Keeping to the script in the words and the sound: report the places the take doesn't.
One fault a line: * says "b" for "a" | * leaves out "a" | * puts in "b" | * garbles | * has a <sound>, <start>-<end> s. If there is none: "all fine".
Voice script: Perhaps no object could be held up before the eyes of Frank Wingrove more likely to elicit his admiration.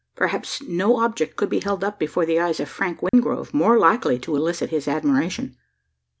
* has a dropout, 3.1-3.1 s